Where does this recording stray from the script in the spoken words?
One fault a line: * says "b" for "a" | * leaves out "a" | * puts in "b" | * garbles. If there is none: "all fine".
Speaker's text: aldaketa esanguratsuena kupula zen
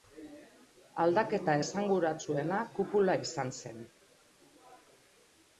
* puts in "izan"